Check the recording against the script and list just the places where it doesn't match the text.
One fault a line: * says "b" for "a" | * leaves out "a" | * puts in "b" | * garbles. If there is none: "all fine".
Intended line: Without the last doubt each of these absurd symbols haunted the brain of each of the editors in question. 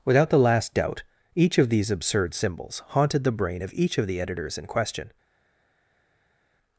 all fine